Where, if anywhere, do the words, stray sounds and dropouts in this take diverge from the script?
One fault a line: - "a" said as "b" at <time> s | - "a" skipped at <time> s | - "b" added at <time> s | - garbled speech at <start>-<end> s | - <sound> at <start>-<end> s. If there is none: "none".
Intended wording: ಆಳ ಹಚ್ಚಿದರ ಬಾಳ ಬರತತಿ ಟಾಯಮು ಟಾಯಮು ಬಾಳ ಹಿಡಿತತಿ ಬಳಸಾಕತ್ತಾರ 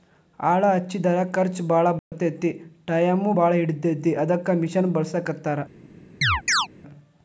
- "ಖರ್ಚ" added at 1.3 s
- dropout at 2.0-2.1 s
- "ಟಾಯಮು" skipped at 3.3 s
- "ಅದಕ್ಕ ಮಿಷನ್" added at 4.2 s
- chirp at 6.2-6.7 s